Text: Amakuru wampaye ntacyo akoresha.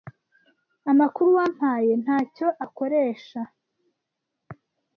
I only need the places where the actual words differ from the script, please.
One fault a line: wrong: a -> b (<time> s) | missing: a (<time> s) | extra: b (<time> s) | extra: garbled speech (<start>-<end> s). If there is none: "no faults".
no faults